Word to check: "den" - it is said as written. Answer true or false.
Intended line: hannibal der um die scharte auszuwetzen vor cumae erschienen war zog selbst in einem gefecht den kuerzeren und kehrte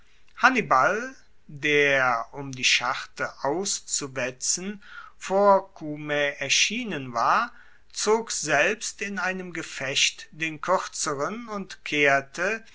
true